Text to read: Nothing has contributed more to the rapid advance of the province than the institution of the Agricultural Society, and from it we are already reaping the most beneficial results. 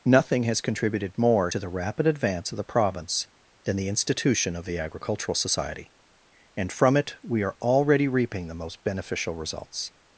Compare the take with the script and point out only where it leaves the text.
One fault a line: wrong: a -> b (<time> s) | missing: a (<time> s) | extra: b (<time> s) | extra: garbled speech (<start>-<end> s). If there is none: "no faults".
no faults